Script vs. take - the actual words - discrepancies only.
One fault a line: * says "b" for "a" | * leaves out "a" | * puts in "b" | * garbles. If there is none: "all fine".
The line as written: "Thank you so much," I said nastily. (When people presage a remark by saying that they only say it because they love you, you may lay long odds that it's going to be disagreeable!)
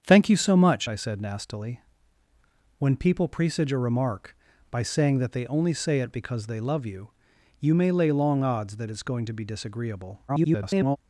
* garbles